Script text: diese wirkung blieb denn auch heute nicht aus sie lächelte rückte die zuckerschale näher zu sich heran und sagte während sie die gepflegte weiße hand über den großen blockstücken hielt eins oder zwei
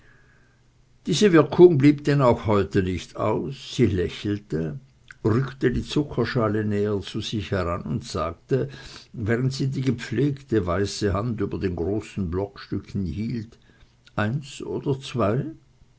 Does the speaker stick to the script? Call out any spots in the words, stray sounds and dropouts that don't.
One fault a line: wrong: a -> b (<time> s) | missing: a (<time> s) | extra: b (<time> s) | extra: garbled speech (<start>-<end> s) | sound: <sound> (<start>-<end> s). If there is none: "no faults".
no faults